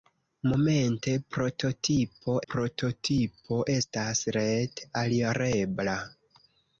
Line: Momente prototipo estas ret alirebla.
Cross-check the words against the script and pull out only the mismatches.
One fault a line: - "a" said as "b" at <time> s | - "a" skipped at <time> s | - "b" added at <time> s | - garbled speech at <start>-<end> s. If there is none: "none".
- "prototipo" added at 2.5 s